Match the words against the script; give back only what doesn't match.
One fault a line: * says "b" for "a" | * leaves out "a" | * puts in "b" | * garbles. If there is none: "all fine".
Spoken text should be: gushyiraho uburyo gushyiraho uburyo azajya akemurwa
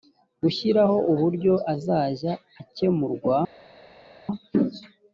* leaves out "gushyiraho uburyo"